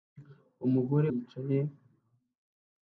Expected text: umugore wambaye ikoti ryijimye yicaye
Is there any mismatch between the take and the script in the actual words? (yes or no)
yes